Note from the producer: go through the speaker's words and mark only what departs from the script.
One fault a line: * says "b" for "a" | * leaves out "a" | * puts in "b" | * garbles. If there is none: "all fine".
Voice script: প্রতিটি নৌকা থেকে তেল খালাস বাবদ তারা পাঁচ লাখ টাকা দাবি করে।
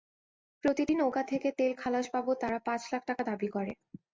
all fine